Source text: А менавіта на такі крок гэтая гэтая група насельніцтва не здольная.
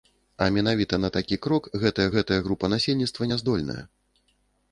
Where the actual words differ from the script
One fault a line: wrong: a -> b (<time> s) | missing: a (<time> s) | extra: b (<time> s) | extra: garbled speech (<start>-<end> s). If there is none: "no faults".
no faults